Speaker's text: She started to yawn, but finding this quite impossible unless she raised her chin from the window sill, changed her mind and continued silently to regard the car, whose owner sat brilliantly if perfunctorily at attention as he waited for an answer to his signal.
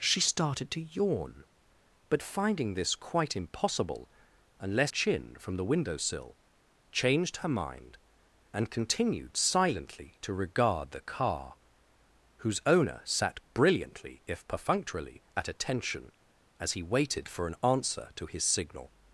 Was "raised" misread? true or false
true